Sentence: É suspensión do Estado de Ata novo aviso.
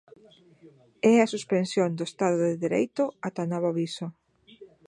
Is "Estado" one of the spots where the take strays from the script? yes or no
no